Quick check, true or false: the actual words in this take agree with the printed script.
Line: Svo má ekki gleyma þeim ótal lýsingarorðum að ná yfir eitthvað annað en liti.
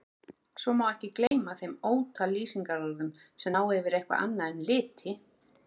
false